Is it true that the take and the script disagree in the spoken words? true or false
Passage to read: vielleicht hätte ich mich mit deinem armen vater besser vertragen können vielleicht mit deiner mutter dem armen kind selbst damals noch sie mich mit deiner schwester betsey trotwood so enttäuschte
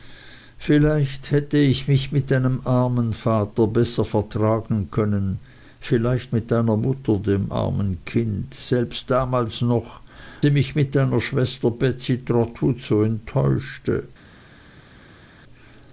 false